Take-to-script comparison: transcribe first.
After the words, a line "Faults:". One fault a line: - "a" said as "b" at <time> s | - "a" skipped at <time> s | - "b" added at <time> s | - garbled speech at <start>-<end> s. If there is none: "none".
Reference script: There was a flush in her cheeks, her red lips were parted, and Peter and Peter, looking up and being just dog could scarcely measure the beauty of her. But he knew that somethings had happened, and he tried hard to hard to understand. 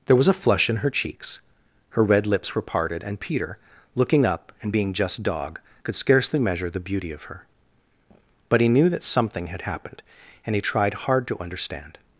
There was a flush in her cheeks, her red lips were parted, and Peter, looking up and being just dog could scarcely measure the beauty of her. But he knew that something had happened, and he tried hard to understand.
Faults:
- "and Peter" skipped at 3.6 s
- "somethings" said as "something" at 9.0 s
- "hard to" skipped at 11.4 s